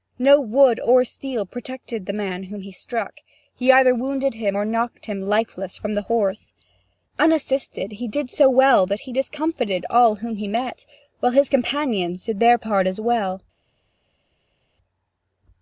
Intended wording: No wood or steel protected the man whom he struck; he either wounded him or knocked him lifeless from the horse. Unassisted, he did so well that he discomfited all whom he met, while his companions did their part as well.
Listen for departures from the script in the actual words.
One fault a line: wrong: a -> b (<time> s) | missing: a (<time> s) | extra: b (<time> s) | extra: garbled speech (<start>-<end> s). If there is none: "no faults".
no faults